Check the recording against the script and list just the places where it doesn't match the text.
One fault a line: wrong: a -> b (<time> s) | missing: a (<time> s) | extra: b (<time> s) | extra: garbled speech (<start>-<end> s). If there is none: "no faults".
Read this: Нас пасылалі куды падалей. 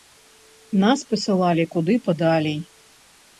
no faults